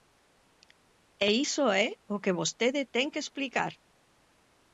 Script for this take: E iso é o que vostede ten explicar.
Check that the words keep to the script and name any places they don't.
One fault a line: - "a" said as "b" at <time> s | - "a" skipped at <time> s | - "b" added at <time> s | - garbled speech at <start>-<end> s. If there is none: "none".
- "que" added at 3.1 s